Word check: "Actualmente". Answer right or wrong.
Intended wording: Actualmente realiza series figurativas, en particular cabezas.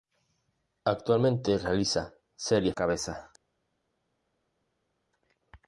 right